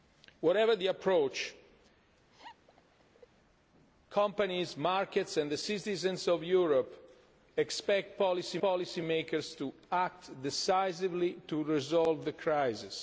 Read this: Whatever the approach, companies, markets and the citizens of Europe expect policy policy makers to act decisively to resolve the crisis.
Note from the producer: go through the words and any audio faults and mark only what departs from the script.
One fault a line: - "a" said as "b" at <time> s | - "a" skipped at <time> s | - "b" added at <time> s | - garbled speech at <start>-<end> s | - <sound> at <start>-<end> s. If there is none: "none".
- laugh at 2.3-3.3 s